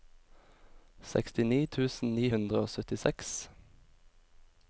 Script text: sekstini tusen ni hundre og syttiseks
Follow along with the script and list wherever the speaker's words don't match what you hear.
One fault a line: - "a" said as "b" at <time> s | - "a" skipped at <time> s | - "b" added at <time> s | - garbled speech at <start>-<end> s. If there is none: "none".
none